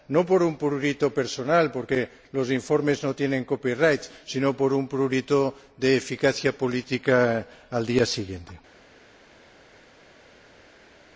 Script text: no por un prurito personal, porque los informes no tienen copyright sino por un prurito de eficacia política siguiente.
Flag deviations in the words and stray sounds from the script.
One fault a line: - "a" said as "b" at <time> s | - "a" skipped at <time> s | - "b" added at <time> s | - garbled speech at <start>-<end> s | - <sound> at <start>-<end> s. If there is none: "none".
- "al día" added at 7.7 s